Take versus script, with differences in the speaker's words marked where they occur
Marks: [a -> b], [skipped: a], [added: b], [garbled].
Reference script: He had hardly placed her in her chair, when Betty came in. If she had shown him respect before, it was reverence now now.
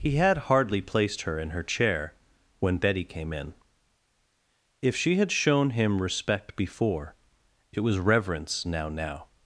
He had hardly placed her in her chair, when Betty came in. If she had shown him respect before, it was reverence now now.